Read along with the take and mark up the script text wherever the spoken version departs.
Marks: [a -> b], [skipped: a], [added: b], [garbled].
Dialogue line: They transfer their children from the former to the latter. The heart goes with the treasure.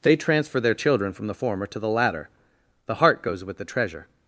They transfer their children from the former to the latter. The heart goes with the treasure.